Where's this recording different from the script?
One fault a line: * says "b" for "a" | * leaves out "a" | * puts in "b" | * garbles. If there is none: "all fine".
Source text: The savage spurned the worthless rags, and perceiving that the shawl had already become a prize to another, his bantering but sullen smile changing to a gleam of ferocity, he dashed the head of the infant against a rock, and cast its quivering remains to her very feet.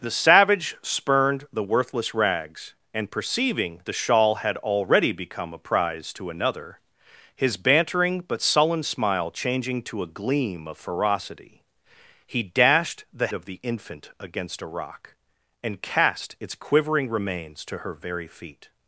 * leaves out "that"
* leaves out "head"